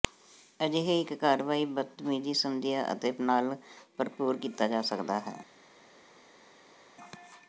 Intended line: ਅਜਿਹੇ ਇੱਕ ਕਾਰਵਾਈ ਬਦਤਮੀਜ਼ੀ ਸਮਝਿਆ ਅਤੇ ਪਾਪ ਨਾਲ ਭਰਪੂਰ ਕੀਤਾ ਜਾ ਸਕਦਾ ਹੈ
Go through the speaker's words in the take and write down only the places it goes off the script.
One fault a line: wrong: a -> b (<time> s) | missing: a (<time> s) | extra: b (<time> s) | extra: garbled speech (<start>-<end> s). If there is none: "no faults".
missing: ਪਾਪ (3.1 s)